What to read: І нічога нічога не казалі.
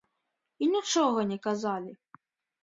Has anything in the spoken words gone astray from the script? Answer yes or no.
yes